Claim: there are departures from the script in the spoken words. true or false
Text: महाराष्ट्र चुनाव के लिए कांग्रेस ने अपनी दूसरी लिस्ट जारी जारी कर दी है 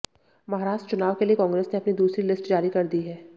true